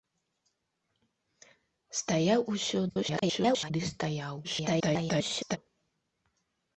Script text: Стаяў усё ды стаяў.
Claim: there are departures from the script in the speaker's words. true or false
true